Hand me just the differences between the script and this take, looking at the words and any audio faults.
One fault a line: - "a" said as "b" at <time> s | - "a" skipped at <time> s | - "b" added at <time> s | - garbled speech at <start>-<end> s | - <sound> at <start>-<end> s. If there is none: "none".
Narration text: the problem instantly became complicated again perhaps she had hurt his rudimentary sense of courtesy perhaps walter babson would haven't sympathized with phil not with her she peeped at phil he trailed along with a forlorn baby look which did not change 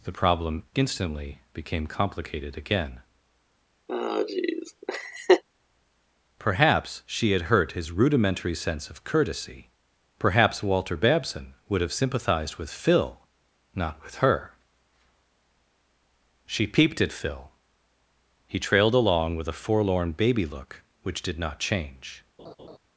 - laugh at 3.9-5.4 s
- "haven't" said as "have" at 11.8 s
- laugh at 22.4-22.8 s